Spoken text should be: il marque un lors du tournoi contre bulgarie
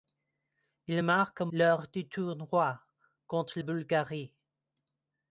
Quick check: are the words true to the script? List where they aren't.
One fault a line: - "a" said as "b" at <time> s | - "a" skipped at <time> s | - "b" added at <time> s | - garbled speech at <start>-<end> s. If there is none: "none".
none